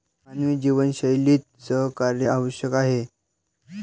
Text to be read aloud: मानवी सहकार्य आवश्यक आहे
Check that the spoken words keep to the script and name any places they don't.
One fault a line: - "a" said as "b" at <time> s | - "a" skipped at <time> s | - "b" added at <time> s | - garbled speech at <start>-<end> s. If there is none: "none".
- "जीवनशैलीत" added at 0.6 s